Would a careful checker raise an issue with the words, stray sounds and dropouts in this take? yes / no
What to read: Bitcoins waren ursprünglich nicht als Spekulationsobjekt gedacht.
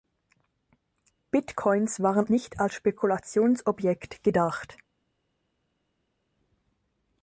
yes